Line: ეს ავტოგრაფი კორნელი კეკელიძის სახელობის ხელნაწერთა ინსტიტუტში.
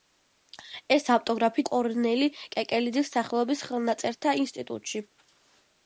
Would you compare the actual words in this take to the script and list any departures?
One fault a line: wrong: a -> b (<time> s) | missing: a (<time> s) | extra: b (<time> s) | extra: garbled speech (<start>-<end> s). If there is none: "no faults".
no faults